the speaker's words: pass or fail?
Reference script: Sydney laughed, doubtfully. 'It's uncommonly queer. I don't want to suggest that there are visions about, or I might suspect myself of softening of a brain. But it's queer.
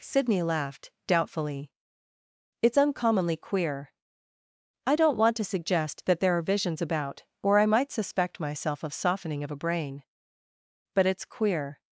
pass